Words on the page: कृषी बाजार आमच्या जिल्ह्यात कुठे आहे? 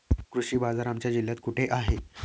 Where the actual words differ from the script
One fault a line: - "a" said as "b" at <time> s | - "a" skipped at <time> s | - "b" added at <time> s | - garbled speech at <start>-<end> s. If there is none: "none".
none